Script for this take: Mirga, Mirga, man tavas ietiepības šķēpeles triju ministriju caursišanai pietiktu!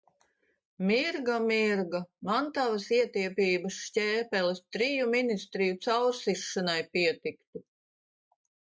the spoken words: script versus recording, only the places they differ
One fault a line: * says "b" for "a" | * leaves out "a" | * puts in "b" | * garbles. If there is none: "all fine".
all fine